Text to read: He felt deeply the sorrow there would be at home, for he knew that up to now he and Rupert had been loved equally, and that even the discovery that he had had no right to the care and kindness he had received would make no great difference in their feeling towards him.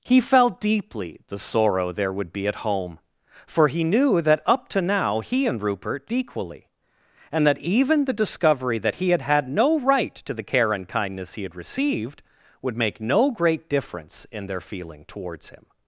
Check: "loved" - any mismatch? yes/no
yes